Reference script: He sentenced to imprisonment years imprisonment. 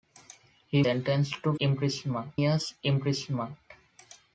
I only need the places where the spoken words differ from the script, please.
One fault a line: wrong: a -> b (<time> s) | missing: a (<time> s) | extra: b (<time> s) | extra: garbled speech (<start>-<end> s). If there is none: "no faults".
no faults